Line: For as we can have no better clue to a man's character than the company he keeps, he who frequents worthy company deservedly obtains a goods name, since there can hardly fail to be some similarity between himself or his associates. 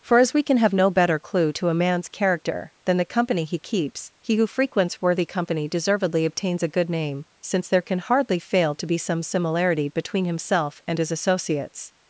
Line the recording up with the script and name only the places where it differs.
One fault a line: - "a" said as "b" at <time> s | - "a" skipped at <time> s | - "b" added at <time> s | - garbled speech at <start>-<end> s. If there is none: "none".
- "goods" said as "good" at 6.7 s
- "or" said as "and" at 10.9 s